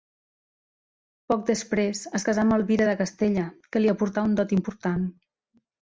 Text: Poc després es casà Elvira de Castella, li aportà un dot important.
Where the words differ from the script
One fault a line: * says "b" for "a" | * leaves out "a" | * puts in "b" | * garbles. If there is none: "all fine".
* puts in "amb"
* puts in "que"